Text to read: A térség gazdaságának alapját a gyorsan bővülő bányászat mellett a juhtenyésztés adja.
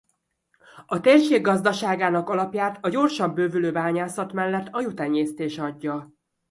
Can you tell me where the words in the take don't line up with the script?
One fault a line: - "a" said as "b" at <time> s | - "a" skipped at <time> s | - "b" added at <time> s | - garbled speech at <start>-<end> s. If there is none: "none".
none